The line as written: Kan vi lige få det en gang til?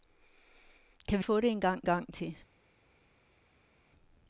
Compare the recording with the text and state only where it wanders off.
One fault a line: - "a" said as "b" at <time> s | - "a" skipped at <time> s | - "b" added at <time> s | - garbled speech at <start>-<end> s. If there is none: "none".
- "lige" skipped at 1.2 s
- "gang" added at 1.8 s